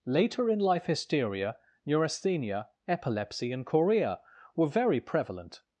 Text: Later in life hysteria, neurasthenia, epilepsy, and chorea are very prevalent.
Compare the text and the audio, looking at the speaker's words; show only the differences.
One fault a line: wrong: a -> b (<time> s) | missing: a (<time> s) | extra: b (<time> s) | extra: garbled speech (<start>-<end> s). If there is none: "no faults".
wrong: are -> were (4.5 s)